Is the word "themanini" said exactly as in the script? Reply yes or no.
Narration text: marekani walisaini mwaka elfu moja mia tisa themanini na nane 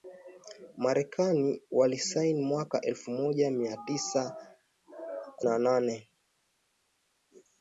no